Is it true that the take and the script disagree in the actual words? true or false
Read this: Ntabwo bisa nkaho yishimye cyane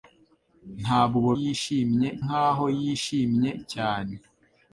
true